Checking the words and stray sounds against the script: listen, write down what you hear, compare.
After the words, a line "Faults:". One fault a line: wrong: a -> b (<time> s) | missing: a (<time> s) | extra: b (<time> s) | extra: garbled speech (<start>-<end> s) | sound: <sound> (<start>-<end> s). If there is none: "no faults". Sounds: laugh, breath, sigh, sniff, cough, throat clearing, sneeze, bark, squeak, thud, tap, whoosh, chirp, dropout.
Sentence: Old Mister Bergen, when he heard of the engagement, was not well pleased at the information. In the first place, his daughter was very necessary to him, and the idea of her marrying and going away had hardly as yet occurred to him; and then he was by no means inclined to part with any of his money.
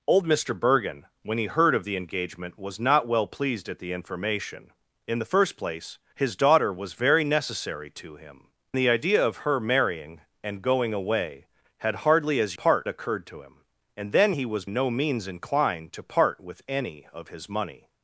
Old Mister Bergen, when he heard of the engagement, was not well pleased at the information. In the first place, his daughter was very necessary to him, the idea of her marrying and going away had hardly as part occurred to him; and then he was no means inclined to part with any of his money.
Faults:
missing: and (8.5 s)
wrong: yet -> part (12.5 s)
missing: by (14.6 s)